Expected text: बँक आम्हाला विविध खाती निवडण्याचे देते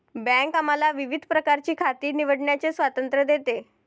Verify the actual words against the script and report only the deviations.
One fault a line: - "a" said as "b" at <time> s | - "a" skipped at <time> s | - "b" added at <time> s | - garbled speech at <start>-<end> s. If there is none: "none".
- "प्रकारची" added at 1.3 s
- "स्वातंत्र्य" added at 2.7 s